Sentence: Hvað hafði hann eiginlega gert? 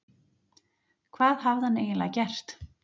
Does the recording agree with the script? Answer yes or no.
yes